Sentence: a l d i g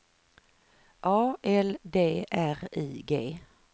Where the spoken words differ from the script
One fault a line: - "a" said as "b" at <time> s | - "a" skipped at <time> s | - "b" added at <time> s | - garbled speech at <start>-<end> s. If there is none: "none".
- "r" added at 2.3 s